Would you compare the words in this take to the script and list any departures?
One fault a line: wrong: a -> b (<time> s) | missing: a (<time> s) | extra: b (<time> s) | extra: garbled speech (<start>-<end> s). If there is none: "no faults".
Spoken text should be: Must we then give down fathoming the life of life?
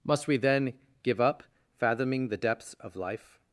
wrong: down -> up (1.2 s)
wrong: life -> depths (2.3 s)